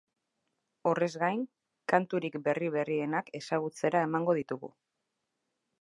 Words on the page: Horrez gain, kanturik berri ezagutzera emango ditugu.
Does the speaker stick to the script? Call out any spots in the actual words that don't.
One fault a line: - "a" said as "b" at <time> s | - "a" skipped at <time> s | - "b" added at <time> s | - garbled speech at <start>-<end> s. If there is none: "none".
- "berrienak" added at 2.8 s